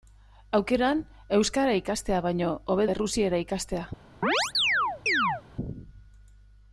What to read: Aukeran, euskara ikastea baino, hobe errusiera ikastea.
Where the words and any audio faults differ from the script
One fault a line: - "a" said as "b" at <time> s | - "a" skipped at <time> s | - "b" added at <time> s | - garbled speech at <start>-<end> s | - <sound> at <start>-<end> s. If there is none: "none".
- chirp at 4.2-5.4 s